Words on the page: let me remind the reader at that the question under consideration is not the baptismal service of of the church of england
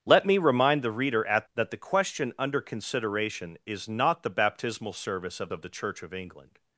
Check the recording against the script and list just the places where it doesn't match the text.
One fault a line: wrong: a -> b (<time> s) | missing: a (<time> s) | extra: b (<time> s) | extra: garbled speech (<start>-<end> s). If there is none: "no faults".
no faults